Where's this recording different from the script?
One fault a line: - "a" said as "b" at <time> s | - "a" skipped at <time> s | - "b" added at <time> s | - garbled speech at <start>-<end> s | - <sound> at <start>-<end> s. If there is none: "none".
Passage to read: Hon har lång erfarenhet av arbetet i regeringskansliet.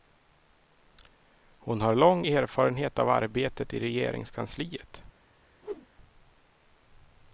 - whoosh at 5.6-5.9 s